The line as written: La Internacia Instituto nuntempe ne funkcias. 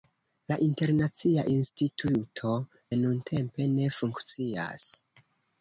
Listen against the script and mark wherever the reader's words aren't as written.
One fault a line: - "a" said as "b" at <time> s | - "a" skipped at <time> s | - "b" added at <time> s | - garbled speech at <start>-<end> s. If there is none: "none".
none